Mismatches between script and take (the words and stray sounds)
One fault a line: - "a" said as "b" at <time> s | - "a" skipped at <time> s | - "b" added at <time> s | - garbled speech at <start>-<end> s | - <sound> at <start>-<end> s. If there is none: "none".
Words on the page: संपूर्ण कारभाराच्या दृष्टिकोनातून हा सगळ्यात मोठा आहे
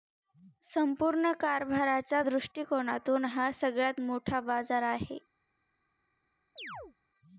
- "बाजार" added at 4.4 s
- chirp at 6.6-7.0 s